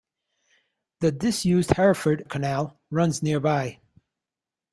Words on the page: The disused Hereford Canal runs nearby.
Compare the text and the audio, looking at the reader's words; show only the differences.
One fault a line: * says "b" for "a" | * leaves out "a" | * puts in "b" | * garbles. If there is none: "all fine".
all fine